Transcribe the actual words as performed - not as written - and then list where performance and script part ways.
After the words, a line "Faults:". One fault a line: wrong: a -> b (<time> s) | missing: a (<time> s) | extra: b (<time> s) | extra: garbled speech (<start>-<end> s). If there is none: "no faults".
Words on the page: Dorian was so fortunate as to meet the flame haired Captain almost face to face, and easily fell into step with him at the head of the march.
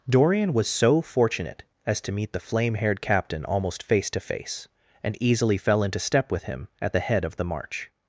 Dorian was so fortunate as to meet the flame haired Captain almost face to face, and easily fell into step with him at the head of the march.
Faults:
no faults